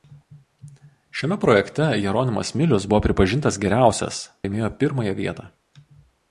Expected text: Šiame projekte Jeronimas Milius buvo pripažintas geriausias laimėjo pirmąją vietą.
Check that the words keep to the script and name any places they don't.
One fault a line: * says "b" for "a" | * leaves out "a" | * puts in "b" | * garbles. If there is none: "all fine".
all fine